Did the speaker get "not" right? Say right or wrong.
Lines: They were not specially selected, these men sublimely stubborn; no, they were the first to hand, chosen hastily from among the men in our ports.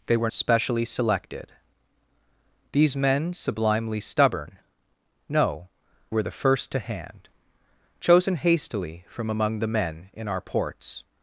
wrong